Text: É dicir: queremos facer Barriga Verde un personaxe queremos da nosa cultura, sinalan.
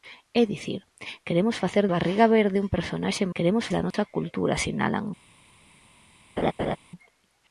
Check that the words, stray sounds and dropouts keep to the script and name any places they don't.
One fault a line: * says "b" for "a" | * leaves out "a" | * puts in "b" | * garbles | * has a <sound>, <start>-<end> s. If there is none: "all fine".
* has a dropout, 3.9-3.9 s
* has a laugh, 6.4-6.8 s